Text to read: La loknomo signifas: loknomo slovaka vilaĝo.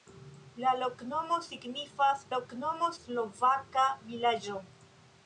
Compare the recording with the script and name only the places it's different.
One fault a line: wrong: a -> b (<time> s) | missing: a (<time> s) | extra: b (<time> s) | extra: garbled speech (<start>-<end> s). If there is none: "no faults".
no faults